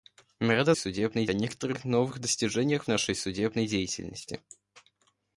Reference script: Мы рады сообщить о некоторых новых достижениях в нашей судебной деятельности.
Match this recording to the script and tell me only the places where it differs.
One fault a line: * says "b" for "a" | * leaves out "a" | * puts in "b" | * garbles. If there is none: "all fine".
* says "судебной" for "сообщить"